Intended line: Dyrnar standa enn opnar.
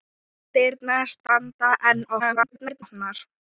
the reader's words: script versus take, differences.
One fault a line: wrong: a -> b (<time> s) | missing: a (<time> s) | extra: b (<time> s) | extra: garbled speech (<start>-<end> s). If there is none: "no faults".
extra: garbled speech (2.2-2.8 s)